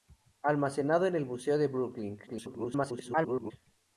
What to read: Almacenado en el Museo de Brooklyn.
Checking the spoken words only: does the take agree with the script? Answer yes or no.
no